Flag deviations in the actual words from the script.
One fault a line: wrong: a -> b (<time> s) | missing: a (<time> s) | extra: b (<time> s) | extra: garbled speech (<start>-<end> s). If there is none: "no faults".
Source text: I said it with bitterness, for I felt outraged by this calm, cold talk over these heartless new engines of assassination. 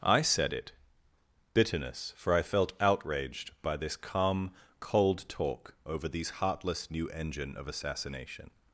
missing: with (0.7 s)
wrong: engines -> engine (7.1 s)